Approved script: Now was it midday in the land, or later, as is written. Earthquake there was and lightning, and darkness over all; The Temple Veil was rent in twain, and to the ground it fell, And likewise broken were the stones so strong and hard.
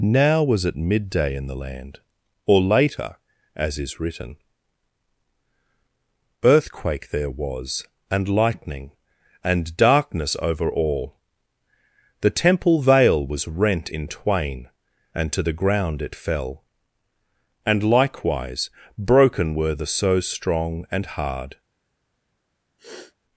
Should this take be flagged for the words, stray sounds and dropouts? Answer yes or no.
yes